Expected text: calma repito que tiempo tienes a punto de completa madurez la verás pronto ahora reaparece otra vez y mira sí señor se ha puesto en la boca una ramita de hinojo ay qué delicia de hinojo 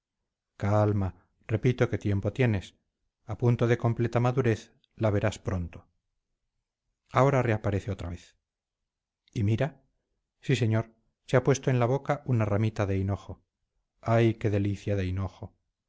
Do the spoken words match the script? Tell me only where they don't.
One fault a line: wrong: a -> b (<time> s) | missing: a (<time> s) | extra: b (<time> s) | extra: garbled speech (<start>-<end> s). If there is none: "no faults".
no faults